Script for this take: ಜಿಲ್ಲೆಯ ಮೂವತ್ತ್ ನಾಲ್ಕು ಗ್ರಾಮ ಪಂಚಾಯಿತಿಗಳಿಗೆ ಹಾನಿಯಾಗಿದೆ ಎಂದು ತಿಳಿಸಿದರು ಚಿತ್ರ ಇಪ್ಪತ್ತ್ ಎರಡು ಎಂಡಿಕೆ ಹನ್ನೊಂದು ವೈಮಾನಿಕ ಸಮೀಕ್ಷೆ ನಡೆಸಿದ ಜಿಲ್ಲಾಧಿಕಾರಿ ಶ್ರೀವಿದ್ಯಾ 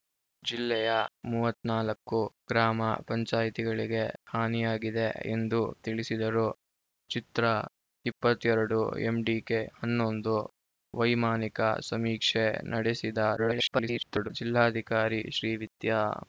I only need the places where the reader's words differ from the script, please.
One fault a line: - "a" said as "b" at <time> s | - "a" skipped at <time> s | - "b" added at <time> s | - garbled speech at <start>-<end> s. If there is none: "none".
- garbled speech at 13.4-14.3 s